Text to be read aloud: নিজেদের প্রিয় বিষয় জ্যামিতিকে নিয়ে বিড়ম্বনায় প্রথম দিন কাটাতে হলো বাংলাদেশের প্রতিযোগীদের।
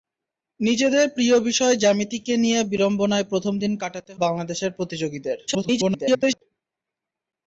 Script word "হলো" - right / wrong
wrong